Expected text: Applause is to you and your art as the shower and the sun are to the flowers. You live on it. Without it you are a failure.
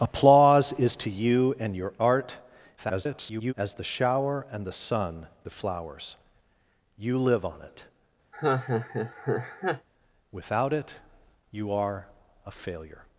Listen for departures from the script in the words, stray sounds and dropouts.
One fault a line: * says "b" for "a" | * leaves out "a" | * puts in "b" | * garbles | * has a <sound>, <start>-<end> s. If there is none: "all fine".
* garbles
* leaves out "are to"
* has a laugh, 8.3-9.9 s